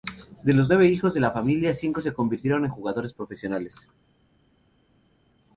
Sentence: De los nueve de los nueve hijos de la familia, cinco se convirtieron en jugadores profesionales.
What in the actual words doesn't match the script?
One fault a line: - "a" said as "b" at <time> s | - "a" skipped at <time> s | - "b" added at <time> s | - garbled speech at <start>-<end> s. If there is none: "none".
- "de los nueve" skipped at 0.9 s